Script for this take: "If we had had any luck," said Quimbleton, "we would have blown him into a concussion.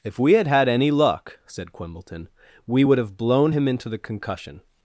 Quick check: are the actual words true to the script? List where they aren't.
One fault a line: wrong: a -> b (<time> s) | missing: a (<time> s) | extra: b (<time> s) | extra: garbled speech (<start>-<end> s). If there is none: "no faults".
wrong: a -> the (3.9 s)